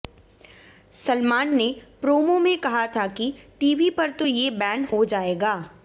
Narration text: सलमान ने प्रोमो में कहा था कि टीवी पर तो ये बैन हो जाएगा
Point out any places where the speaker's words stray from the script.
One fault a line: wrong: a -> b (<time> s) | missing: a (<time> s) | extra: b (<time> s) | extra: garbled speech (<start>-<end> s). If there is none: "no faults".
no faults